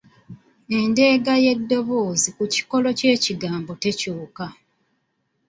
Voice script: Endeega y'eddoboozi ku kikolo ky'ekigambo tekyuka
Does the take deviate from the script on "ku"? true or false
false